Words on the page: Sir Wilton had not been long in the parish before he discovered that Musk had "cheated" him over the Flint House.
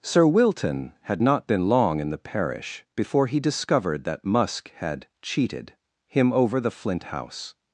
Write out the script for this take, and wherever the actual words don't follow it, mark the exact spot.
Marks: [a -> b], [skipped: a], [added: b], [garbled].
Sir Wilton had not been long in the parish before he discovered that Musk had "cheated" him over the Flint House.